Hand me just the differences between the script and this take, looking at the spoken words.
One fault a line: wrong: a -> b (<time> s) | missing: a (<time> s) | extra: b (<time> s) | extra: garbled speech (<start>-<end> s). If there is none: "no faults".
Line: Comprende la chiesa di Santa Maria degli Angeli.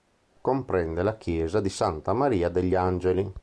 no faults